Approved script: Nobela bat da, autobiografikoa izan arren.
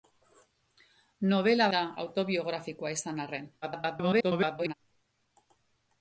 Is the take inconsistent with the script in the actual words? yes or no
yes